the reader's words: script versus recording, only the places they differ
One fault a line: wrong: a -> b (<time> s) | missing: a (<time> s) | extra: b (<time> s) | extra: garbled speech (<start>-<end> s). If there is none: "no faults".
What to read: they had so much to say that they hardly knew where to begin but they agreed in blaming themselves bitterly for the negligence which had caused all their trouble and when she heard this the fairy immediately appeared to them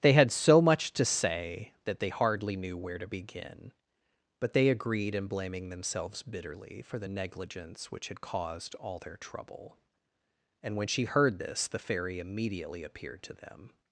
no faults